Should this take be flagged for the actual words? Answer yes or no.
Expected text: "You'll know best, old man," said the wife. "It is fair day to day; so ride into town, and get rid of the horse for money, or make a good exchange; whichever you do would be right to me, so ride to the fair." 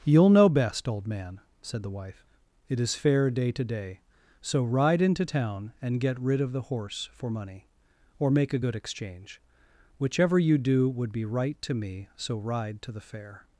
no